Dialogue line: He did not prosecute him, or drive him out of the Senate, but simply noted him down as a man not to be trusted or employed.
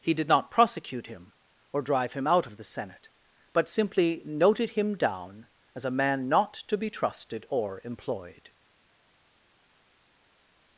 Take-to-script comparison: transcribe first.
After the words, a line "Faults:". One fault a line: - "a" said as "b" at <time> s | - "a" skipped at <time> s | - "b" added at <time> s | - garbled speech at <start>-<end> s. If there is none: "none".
He did not prosecute him, or drive him out of the Senate, but simply noted him down as a man not to be trusted or employed.
Faults:
none